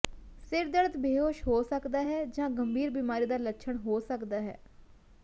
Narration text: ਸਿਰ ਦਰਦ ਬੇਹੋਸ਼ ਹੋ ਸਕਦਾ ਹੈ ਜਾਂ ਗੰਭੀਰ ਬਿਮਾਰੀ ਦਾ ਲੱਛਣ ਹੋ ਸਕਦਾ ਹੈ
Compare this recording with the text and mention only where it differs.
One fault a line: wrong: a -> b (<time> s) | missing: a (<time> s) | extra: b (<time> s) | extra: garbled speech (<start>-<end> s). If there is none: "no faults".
no faults